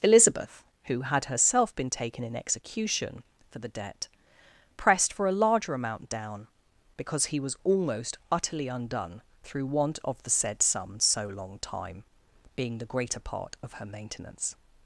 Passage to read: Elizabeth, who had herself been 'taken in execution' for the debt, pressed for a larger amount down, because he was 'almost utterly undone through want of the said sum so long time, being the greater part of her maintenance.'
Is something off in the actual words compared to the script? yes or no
no